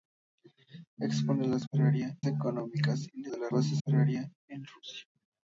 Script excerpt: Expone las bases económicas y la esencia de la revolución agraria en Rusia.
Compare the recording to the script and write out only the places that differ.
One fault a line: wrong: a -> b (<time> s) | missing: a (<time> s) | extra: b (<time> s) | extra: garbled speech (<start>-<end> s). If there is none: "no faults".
wrong: bases -> agraria (1.7 s)
missing: esencia (3.3 s)
wrong: revolución -> bases (3.5 s)